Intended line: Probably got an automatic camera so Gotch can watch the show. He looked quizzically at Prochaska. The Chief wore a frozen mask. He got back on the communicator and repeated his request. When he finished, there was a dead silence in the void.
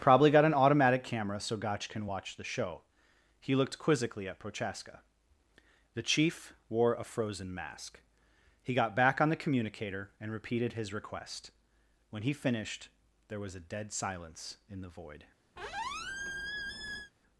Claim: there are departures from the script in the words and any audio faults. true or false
true